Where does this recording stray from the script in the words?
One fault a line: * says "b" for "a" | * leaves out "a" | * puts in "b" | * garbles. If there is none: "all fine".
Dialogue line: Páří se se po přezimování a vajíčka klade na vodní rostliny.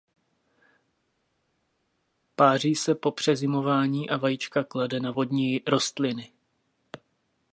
* leaves out "se"